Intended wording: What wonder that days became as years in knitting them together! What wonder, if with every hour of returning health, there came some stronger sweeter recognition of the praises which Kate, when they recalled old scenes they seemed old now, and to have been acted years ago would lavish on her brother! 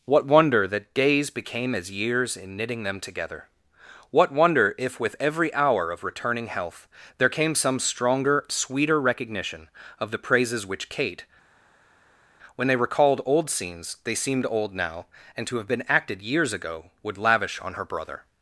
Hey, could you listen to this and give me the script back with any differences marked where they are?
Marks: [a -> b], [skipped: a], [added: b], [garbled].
What wonder that days became as years in knitting them together! What wonder, if with every hour of returning health, there came some stronger sweeter recognition of the praises which Kate, when they recalled old scenes they seemed old now, and to have been acted years ago would lavish on her brother!